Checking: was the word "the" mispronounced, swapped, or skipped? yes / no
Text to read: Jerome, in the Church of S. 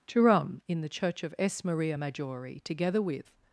no